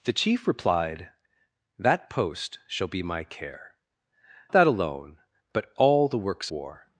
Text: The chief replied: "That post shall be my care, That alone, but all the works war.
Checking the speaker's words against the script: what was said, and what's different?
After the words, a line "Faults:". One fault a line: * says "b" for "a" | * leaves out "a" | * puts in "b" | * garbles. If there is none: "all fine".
The chief replied: "That post shall be my care, That alone, but all the works war.
Faults:
all fine